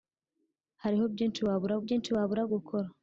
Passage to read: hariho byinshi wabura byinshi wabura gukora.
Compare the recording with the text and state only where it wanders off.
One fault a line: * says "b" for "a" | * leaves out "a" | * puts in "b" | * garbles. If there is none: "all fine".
all fine